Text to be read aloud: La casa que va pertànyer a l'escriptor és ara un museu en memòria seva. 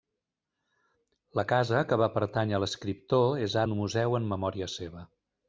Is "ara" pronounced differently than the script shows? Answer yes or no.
yes